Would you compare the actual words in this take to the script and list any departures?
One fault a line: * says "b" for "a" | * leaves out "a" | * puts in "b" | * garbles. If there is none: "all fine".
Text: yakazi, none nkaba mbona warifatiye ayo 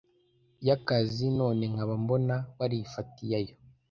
all fine